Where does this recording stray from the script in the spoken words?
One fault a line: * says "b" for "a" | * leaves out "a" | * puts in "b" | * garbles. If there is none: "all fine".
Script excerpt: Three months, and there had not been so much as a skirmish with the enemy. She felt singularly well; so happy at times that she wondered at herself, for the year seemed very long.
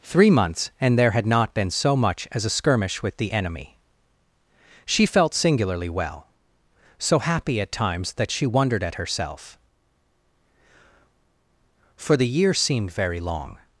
all fine